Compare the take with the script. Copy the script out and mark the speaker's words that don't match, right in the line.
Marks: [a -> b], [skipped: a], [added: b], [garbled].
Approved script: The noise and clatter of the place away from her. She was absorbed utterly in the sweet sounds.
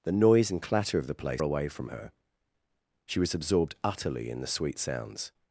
The noise and clatter of the place away from her. She was absorbed utterly in the sweet sounds.